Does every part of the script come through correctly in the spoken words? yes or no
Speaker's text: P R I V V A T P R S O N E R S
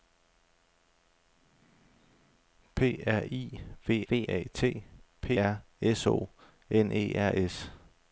yes